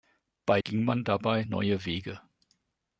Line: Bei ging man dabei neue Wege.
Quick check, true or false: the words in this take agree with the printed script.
true